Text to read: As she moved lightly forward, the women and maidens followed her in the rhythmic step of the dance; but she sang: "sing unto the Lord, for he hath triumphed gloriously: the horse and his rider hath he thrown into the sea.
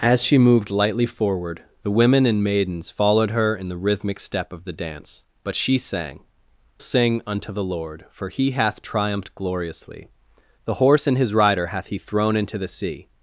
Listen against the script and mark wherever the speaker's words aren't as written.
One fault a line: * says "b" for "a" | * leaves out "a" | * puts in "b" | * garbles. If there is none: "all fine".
all fine